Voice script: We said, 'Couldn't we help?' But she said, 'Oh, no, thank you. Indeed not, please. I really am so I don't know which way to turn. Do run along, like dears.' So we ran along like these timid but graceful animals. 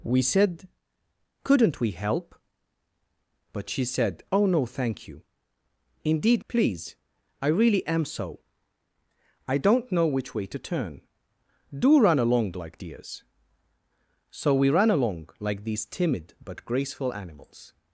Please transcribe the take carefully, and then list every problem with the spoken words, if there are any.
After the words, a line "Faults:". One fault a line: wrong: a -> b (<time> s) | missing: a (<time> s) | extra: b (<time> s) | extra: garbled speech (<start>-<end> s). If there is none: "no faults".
We said, 'Couldn't we help?' But she said, 'Oh, no, thank you. Indeed please. I really am so I don't know which way to turn. Do run along, like dears.' So we ran along like these timid but graceful animals.
Faults:
missing: not (6.4 s)